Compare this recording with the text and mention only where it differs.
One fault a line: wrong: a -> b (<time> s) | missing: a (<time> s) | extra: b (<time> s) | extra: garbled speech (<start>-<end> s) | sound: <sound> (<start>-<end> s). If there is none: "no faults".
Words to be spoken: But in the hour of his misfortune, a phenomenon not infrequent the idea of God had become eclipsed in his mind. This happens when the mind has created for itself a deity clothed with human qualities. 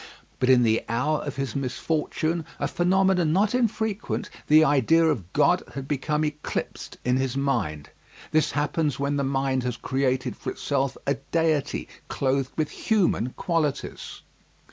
no faults